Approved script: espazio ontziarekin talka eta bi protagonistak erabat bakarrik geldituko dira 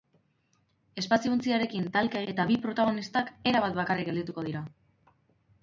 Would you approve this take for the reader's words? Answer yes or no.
yes